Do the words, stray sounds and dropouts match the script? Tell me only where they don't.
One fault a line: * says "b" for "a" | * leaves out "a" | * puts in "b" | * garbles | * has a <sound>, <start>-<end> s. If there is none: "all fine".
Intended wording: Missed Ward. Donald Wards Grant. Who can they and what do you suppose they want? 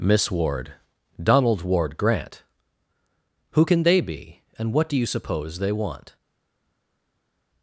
* says "Miss" for "Missed"
* says "Ward" for "Wards"
* puts in "be"